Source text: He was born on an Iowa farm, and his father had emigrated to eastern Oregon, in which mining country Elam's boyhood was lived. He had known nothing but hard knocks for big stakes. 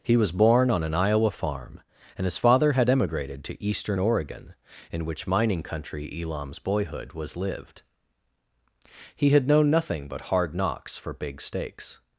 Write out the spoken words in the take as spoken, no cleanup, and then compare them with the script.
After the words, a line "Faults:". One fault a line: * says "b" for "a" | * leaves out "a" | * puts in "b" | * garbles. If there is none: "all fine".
He was born on an Iowa farm, and his father had emigrated to eastern Oregon, in which mining country Elam's boyhood was lived. He had known nothing but hard knocks for big stakes.
Faults:
all fine